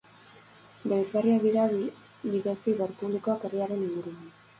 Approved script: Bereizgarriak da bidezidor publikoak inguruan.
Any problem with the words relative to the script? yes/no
yes